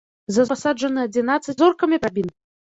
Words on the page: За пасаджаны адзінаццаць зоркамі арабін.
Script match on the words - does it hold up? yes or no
yes